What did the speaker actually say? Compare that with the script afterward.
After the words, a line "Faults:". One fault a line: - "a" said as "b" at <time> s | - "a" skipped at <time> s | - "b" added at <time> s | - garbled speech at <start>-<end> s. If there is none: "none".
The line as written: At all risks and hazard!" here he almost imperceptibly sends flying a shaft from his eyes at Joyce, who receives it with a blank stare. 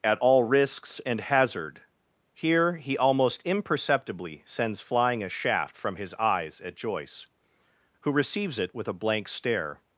At all risks and hazard!" here he almost imperceptibly sends flying a shaft from his eyes at Joyce, who receives it with a blank stare.
Faults:
none